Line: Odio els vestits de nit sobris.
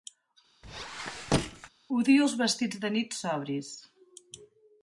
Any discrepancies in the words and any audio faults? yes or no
yes